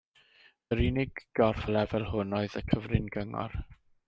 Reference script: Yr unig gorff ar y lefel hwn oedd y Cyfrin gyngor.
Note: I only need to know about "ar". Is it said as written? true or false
false